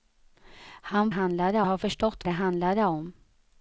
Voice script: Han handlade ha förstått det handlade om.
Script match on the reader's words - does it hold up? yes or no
yes